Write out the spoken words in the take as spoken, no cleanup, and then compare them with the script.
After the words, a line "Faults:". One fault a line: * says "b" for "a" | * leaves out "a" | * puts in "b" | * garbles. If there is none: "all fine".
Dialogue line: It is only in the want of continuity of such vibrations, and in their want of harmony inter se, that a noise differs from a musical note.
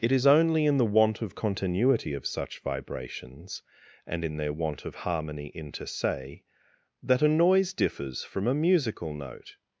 It is only in the want of continuity of such vibrations, and in their want of harmony inter se, that a noise differs from a musical note.
Faults:
all fine